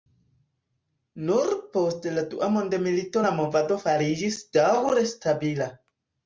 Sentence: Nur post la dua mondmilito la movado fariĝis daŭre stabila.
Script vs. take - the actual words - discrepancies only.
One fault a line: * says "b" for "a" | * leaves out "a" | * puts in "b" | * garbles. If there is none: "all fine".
all fine